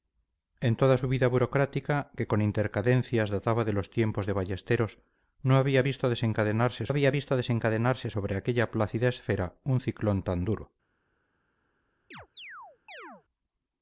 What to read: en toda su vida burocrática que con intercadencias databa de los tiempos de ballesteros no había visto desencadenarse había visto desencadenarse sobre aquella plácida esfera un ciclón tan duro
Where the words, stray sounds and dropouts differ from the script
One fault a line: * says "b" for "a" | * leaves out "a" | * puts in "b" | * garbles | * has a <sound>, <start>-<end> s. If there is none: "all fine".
* has a chirp, 12.1-13.2 s